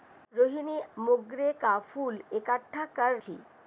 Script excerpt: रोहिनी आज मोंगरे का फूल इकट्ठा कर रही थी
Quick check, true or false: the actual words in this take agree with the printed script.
false